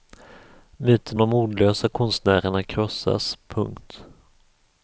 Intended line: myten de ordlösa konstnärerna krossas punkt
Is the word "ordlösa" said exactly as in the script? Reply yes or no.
yes